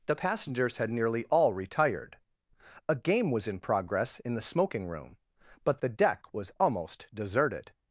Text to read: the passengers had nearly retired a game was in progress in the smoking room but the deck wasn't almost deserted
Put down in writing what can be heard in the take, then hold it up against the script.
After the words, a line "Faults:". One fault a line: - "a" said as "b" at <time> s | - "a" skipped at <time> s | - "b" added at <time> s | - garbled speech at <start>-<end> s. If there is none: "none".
the passengers had nearly all retired a game was in progress in the smoking room but the deck was almost deserted
Faults:
- "all" added at 1.2 s
- "wasn't" said as "was" at 6.3 s